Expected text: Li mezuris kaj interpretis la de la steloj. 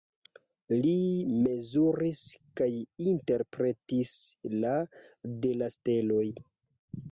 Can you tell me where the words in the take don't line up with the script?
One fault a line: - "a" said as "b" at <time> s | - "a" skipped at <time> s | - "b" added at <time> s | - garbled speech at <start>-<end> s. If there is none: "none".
none